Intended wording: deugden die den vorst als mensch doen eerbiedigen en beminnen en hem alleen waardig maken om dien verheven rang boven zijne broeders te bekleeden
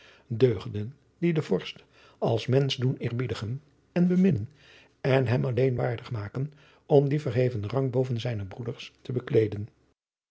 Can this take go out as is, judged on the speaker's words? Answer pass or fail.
pass